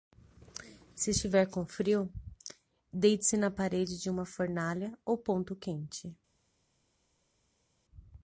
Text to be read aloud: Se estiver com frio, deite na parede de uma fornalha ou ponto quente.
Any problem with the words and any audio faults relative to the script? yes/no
yes